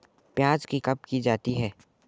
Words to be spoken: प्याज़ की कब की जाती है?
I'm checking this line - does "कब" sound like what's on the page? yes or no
yes